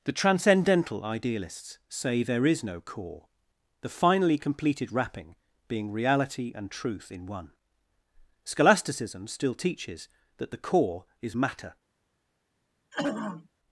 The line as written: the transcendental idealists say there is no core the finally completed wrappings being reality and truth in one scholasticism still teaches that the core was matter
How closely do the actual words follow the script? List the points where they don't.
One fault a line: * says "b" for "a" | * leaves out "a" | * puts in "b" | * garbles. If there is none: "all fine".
* says "wrapping" for "wrappings"
* says "is" for "was"